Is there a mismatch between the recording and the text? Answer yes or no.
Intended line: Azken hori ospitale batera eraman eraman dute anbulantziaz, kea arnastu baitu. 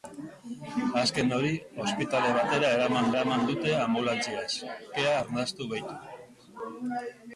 no